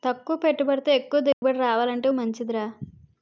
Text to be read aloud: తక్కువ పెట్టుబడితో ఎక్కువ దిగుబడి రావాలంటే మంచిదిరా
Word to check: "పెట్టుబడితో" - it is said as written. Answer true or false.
true